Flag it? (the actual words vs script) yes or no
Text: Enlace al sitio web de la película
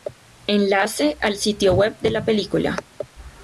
no